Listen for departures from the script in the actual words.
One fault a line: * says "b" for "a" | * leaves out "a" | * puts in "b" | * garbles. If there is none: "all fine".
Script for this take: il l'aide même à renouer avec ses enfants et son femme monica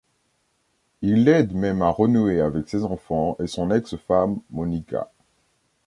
* puts in "ex"